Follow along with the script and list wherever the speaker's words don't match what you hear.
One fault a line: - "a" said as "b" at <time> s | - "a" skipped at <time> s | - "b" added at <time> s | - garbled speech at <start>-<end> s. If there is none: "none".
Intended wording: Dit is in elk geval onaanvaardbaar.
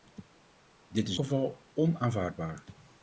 - "in elk" skipped at 1.2 s